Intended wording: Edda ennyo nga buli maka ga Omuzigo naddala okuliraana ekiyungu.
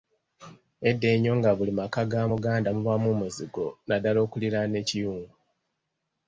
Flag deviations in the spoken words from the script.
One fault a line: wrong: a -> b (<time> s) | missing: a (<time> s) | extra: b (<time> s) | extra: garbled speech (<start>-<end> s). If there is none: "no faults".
extra: Muganda mubaamu (2.3 s)